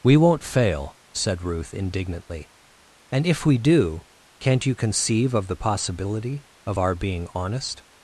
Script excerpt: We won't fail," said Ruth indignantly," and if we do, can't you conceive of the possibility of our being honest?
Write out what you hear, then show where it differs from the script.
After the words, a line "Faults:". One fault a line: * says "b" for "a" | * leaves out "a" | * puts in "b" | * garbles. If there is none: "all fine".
We won't fail," said Ruth indignantly," and if we do, can't you conceive of the possibility of our being honest?
Faults:
all fine